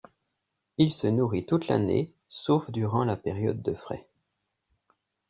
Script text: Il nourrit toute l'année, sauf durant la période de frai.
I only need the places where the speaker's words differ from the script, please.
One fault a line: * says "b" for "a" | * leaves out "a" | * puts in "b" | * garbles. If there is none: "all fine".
* puts in "se"